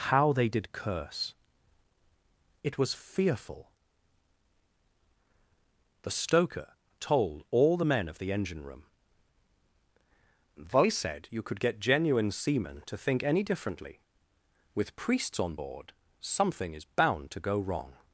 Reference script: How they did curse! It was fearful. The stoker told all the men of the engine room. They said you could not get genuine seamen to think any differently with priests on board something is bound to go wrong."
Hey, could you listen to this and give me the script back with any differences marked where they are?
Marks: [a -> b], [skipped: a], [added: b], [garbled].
How they did curse! It was fearful. The stoker told all the men of the engine room. They said you could [skipped: not] get genuine seamen to think any differently with priests on board something is bound to go wrong."